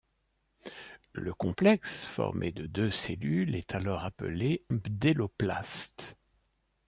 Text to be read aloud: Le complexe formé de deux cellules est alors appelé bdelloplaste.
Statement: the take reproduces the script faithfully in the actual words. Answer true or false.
true